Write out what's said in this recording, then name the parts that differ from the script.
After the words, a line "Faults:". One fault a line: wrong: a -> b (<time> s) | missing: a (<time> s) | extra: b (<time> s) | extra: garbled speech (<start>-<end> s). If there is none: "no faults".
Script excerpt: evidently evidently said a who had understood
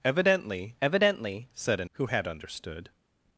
evidently evidently said a who had understood
Faults:
no faults